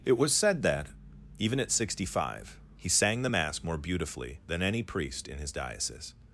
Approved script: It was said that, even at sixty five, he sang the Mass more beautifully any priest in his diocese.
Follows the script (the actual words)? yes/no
no